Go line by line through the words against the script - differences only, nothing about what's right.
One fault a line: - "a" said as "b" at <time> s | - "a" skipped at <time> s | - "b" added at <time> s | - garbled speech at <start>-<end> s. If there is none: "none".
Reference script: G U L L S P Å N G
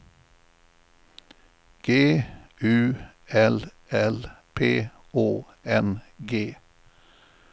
- "S" skipped at 4.2 s